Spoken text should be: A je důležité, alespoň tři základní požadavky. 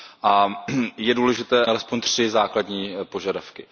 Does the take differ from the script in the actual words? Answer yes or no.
no